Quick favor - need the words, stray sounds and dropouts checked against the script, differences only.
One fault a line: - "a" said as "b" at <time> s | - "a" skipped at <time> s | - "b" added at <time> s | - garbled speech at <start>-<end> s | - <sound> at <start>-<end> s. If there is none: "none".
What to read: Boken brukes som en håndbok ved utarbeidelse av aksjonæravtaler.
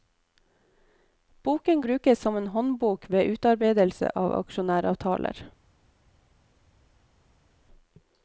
none